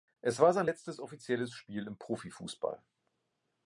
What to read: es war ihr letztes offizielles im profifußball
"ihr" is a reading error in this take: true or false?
true